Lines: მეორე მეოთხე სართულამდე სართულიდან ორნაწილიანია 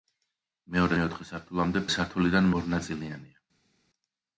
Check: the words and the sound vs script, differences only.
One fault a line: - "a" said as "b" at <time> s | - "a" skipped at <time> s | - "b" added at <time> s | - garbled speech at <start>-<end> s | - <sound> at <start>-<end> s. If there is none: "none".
none